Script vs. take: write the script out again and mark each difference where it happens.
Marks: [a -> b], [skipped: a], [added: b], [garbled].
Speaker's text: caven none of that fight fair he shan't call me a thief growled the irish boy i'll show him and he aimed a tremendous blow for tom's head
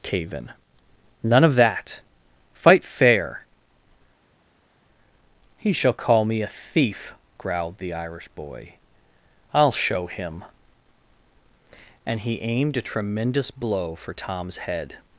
caven none of that fight fair he [shan't -> shall] call me a thief growled the irish boy i'll show him and he aimed a tremendous blow for tom's head